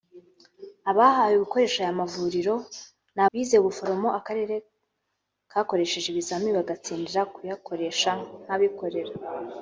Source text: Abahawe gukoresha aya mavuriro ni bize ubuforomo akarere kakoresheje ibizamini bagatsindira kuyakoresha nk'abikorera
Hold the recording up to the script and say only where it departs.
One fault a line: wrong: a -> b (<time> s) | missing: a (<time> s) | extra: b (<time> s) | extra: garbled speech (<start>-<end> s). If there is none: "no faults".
no faults